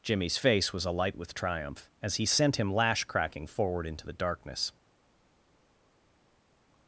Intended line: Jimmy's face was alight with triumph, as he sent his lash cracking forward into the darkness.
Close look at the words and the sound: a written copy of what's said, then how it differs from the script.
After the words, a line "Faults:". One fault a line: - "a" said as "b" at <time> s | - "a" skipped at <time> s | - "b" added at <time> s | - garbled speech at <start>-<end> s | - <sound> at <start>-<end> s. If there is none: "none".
Jimmy's face was alight with triumph, as he sent him lash cracking forward into the darkness.
Faults:
- "his" said as "him" at 2.6 s